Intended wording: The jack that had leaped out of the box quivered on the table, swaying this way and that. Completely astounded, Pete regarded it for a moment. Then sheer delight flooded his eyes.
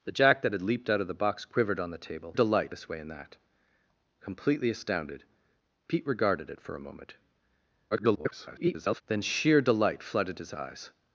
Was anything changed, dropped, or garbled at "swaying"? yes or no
yes